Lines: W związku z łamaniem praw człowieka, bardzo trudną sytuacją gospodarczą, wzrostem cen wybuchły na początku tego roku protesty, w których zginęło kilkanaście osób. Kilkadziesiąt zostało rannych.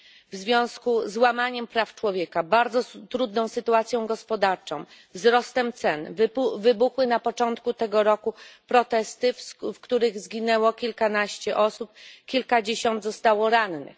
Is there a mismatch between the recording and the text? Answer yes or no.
no